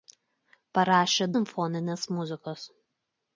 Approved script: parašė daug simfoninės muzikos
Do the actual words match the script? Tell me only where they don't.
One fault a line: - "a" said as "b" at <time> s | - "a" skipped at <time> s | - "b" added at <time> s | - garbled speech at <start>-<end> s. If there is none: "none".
- "daug" skipped at 1.3 s